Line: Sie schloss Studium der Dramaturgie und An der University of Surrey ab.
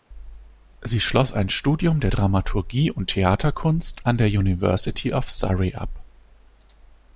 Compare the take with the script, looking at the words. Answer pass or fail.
fail